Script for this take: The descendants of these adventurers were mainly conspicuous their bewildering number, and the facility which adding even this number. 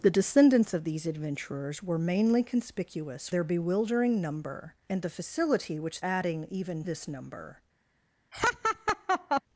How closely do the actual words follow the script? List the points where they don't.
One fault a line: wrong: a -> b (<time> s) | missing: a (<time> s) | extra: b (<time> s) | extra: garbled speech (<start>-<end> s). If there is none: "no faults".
no faults